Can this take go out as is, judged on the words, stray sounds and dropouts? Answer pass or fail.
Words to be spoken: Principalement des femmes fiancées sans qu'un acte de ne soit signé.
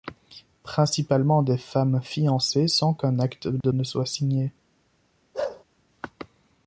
fail